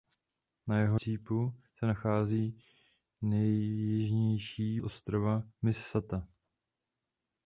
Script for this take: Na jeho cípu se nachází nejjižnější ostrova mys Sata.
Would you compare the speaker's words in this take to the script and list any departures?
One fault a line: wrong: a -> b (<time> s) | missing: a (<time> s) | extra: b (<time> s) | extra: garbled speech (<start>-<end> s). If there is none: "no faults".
no faults